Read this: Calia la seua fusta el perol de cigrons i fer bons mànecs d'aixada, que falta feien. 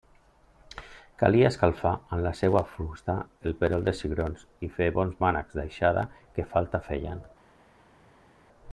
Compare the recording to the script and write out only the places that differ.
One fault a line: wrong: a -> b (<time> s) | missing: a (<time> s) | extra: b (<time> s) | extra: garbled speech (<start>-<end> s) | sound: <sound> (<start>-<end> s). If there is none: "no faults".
extra: escalfar amb (1.5 s)